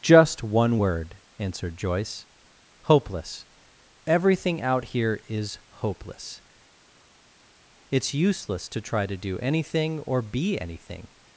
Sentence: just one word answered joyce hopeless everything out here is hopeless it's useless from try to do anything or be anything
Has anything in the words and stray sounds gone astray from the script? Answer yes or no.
yes